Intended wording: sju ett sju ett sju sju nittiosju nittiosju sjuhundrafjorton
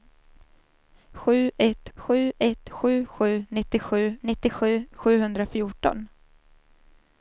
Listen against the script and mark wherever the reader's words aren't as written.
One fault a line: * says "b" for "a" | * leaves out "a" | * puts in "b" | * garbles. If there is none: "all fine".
all fine